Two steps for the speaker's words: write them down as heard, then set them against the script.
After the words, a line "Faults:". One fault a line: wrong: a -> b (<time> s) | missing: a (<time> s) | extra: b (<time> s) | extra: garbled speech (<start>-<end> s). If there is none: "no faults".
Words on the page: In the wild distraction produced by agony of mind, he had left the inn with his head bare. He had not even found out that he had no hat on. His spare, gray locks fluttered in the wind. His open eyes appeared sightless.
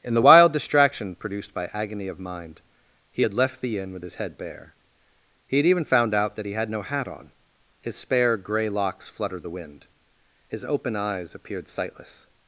In the wild distraction produced by agony of mind, he had left the inn with his head bare. He had even found out that he had no hat on. His spare, gray locks fluttered the wind. His open eyes appeared sightless.
Faults:
missing: not (5.7 s)
missing: in (9.4 s)